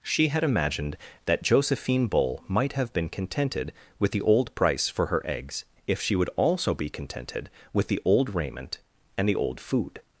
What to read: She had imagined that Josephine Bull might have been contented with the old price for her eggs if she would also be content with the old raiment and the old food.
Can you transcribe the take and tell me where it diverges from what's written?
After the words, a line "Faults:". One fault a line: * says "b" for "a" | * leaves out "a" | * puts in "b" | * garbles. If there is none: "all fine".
She had imagined that Josephine Bull might have been contented with the old price for her eggs if she would also be contented with the old raiment and the old food.
Faults:
* says "contented" for "content"